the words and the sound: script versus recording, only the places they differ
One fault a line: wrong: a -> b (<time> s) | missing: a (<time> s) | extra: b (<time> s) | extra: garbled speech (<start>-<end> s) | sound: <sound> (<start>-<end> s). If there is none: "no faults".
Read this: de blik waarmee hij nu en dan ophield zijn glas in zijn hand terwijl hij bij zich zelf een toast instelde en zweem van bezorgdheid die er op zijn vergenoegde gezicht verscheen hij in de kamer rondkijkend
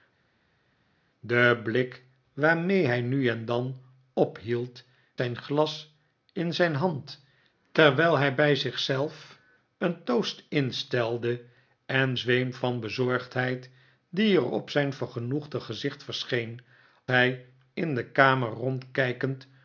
no faults